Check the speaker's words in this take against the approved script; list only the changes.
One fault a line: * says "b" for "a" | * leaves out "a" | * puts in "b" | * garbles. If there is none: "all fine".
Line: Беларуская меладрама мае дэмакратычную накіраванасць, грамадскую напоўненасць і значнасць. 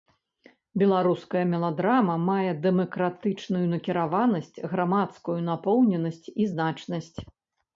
all fine